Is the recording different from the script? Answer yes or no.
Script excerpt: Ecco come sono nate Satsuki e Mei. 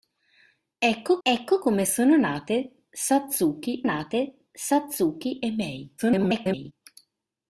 yes